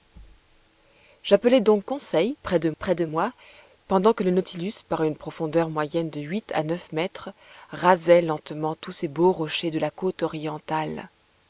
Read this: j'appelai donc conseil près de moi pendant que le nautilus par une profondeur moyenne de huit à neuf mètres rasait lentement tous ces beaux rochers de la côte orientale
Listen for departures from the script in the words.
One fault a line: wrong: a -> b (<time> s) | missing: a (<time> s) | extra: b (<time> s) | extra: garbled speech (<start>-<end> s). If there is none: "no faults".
extra: près de (2.8 s)